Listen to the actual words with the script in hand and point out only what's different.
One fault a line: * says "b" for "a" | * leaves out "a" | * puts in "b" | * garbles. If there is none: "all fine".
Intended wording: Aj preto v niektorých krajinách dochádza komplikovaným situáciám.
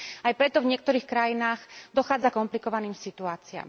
all fine